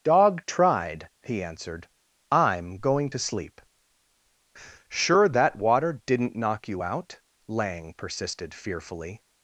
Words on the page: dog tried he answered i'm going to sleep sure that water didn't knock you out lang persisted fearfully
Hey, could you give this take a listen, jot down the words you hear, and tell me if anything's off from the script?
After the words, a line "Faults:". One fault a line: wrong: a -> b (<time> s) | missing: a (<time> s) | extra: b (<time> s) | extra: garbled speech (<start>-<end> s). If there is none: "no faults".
dog tried he answered i'm going to sleep sure that water didn't knock you out lang persisted fearfully
Faults:
no faults